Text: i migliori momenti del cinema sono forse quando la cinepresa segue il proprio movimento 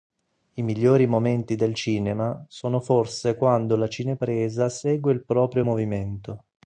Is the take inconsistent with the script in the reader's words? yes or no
no